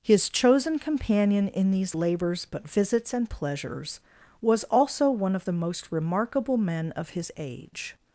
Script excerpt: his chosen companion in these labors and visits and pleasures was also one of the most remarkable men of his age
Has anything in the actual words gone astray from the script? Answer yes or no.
yes